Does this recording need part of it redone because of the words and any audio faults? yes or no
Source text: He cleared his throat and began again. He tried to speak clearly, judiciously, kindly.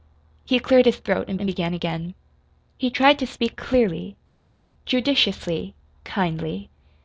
yes